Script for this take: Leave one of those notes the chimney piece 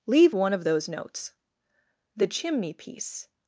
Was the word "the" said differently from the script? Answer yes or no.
no